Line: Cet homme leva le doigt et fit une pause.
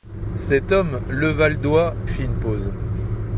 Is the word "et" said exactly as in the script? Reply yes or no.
no